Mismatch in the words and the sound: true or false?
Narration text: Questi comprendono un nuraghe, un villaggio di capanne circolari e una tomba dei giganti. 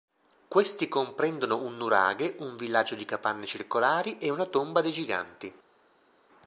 false